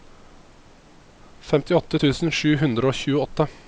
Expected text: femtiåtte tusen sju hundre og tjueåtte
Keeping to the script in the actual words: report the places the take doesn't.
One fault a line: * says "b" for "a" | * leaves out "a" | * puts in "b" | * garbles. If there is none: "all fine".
all fine